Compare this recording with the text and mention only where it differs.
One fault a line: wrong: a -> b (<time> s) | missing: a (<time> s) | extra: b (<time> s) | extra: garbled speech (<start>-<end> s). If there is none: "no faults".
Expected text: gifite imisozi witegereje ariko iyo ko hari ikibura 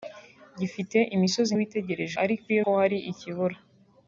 no faults